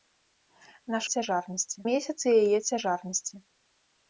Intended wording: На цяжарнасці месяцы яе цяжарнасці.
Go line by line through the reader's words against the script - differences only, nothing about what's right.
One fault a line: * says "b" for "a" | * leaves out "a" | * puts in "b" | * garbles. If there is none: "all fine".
all fine